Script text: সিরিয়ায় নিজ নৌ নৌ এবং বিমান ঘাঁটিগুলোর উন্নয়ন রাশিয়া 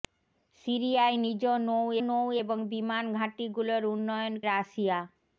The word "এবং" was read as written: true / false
true